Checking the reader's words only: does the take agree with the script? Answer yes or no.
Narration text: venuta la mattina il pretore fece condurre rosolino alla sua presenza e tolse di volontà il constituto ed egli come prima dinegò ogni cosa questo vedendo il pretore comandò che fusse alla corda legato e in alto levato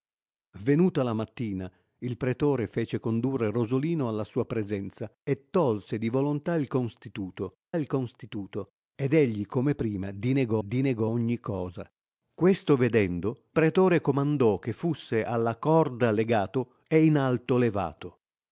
no